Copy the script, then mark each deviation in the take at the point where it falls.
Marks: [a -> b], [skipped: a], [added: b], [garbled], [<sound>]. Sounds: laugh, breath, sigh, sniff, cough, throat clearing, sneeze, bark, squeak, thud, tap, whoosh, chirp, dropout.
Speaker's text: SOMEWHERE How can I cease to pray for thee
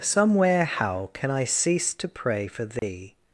SOMEWHERE How can I cease to pray for thee [dropout]